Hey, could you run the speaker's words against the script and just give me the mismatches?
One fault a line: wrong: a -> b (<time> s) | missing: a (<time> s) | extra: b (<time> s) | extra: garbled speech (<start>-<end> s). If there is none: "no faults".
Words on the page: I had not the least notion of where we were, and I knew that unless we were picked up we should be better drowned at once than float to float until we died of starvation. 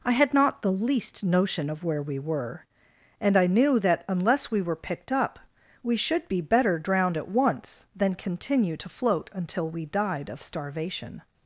wrong: float -> continue (8.1 s)